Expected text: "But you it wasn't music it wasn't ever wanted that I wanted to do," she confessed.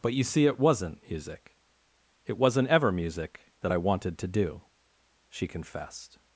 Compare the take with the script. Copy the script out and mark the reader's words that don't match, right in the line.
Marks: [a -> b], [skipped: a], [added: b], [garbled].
"But you [added: see] it wasn't music it wasn't ever [wanted -> music] that I wanted to do," she confessed.